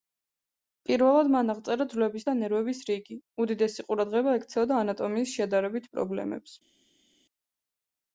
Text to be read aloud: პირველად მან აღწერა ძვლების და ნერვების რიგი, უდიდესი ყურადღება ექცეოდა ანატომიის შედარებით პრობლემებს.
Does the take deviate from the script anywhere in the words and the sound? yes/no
no